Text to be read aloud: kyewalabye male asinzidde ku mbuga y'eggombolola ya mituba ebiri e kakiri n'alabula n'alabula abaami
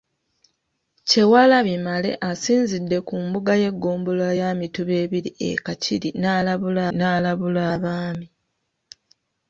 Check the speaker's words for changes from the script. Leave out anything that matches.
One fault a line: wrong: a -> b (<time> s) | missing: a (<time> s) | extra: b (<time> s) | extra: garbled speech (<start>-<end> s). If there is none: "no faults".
no faults